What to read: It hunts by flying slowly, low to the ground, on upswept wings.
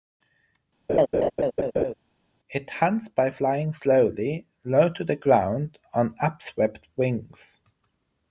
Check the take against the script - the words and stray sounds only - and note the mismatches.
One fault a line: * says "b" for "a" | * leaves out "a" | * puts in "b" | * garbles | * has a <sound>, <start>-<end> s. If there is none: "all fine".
* has a laugh, 0.9-1.9 s